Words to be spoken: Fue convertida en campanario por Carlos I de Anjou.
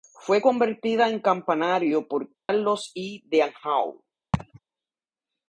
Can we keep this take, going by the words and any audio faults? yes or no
no